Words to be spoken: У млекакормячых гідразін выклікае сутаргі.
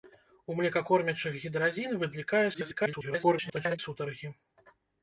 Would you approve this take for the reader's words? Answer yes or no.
no